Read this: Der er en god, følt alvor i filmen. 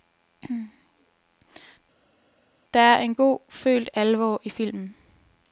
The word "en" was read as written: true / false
true